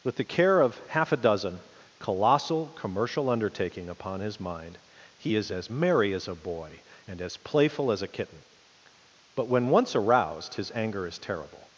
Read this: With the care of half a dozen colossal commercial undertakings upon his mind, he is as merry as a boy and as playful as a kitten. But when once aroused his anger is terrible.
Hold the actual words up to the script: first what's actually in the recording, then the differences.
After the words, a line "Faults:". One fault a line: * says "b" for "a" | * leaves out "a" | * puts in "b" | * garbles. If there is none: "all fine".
With the care of half a dozen colossal commercial undertaking upon his mind, he is as merry as a boy and as playful as a kitten. But when once aroused his anger is terrible.
Faults:
* says "undertaking" for "undertakings"